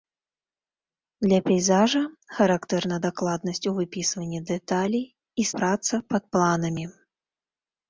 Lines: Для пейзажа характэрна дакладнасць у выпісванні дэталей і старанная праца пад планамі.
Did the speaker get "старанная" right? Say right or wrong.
wrong